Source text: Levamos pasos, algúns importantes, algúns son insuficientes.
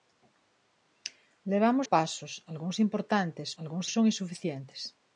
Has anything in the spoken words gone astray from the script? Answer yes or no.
no